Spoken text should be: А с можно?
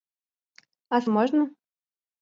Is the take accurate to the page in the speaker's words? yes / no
yes